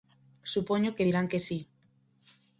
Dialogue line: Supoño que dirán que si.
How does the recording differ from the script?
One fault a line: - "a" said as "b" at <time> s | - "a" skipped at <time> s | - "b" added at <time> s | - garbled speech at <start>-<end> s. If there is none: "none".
none